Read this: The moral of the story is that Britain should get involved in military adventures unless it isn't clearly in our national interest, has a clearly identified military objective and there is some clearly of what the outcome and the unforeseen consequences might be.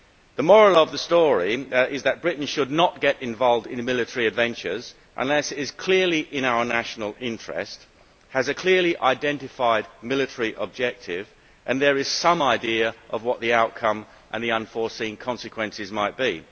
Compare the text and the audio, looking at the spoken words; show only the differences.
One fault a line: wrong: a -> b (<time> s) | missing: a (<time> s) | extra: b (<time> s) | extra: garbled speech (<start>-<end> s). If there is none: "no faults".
extra: not (2.7 s)
wrong: isn't -> is (5.6 s)
wrong: clearly -> idea (12.4 s)